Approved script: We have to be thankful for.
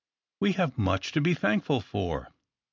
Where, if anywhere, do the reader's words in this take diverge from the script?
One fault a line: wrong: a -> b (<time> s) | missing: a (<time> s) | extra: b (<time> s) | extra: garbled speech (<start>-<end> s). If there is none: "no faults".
extra: much (0.8 s)